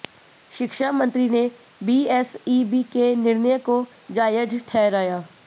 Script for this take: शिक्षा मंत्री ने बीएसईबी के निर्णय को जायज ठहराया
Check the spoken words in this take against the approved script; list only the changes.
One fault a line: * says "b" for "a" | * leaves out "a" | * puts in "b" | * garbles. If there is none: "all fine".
all fine